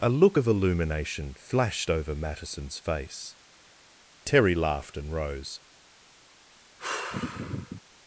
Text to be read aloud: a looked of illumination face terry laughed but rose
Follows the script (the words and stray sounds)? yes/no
no